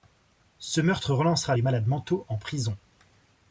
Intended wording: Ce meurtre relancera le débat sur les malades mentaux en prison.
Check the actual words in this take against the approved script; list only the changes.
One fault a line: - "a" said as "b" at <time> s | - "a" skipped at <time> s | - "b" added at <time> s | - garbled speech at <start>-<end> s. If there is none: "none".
- "le débat sur" skipped at 1.6 s